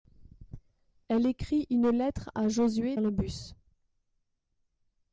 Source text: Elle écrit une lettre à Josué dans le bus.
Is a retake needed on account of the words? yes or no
yes